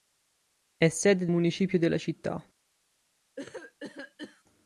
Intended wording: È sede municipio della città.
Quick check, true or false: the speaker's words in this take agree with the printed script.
true